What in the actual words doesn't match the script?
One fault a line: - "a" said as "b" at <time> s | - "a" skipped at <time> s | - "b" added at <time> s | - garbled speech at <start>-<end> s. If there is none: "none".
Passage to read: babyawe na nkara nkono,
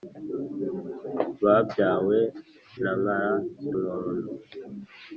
none